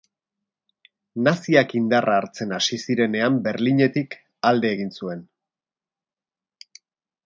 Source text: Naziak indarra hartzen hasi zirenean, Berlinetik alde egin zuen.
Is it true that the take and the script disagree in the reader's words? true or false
false